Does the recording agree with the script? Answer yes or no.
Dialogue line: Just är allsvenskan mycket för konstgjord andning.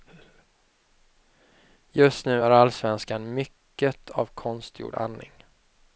no